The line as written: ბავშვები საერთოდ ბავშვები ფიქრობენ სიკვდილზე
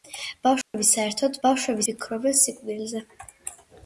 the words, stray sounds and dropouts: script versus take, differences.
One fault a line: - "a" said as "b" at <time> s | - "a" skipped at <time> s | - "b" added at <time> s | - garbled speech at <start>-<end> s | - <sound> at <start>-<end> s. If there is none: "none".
- dropout at 0.6-0.7 s